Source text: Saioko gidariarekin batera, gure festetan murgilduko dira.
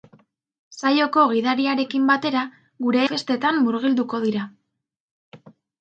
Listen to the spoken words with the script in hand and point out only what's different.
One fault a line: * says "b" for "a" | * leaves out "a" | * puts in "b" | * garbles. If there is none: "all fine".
all fine